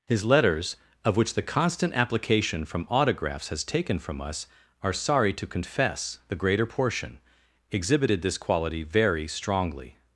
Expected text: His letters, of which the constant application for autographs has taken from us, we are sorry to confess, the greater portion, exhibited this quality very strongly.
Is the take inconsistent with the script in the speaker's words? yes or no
yes